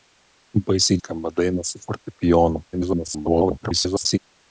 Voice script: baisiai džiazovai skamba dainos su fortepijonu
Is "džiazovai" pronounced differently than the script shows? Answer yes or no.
yes